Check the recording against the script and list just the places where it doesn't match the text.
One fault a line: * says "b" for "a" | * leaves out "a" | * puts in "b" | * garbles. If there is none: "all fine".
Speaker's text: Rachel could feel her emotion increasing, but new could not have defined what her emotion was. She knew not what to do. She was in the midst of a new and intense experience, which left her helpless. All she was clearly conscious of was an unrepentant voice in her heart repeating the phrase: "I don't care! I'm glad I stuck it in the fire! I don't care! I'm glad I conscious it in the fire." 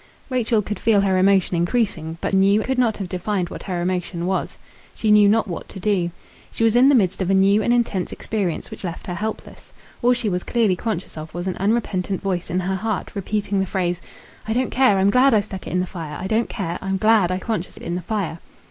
all fine